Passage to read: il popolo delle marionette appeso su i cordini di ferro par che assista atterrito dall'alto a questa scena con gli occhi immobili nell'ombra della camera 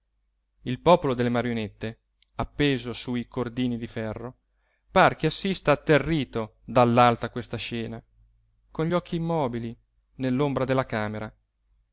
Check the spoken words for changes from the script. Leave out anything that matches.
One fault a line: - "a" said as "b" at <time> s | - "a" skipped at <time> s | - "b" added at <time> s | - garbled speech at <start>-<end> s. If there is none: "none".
none